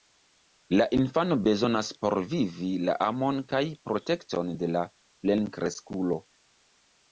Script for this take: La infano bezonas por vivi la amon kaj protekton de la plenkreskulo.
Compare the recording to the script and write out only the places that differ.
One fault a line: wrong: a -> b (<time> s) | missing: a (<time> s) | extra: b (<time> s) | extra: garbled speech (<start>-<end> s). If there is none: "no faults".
no faults